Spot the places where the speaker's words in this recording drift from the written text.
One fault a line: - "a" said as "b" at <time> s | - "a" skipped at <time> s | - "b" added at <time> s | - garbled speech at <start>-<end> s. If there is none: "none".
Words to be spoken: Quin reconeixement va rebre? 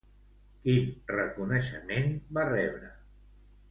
none